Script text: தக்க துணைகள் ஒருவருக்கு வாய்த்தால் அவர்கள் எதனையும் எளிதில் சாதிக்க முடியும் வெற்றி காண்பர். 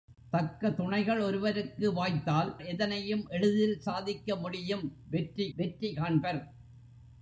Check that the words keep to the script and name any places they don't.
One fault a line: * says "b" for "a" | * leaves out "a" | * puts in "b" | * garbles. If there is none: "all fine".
* leaves out "அவர்கள்"
* puts in "வெற்றி"